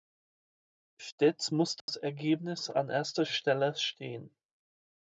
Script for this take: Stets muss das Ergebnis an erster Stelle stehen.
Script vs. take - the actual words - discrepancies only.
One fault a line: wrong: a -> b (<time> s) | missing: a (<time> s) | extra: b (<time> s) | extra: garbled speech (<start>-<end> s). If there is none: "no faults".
no faults